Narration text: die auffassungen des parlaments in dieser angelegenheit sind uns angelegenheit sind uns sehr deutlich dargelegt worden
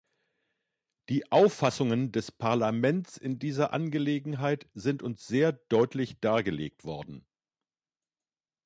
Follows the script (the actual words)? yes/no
no